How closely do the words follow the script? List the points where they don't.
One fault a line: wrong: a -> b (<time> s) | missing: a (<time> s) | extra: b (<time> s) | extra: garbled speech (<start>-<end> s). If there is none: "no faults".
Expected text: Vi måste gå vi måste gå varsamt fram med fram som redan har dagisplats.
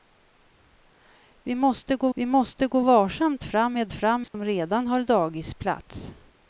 no faults